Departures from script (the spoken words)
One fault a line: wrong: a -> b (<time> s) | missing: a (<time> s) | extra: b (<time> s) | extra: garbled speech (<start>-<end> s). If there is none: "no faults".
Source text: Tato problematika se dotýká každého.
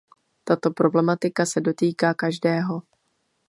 no faults